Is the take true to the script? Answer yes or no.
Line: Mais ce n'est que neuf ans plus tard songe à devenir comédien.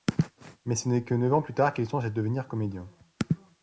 no